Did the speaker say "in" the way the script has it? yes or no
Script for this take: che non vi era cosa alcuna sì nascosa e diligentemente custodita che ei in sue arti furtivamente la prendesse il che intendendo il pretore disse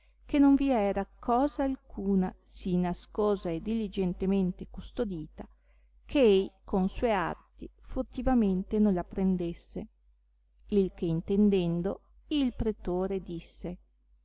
no